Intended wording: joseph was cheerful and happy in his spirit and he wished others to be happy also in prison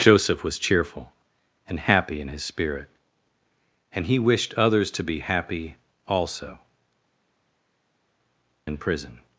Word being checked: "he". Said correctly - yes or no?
yes